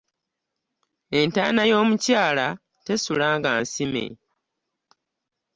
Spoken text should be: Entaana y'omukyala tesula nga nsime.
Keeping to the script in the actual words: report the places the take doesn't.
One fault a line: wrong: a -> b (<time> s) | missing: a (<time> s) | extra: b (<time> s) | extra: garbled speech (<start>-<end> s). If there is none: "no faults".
no faults